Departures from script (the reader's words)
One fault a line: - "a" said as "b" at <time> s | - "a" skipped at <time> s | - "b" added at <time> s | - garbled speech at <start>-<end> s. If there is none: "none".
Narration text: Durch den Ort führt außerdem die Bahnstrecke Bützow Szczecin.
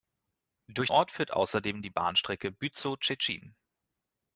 - "den" skipped at 0.9 s